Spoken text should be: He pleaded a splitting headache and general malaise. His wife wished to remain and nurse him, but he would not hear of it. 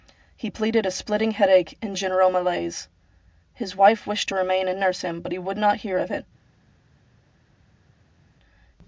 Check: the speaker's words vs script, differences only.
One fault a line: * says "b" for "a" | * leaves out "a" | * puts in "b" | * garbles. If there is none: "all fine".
all fine